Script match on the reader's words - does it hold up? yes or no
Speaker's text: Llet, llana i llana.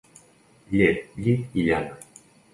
no